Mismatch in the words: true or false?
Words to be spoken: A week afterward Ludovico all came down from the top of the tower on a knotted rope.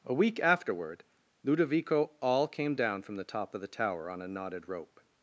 false